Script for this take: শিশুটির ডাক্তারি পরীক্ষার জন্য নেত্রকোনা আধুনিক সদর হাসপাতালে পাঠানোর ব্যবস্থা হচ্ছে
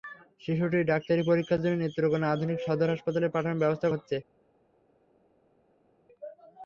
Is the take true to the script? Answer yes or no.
yes